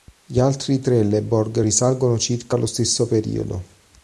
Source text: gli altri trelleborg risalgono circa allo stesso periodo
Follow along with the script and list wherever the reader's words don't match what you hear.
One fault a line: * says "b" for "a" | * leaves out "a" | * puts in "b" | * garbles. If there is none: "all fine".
all fine